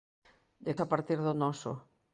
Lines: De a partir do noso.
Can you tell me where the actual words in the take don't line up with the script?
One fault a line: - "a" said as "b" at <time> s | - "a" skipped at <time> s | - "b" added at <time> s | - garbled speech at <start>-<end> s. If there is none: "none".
none